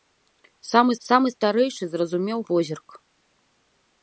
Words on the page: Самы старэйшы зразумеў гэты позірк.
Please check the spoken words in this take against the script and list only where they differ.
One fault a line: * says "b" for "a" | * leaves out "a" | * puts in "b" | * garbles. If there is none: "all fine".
* puts in "самы"
* leaves out "гэты"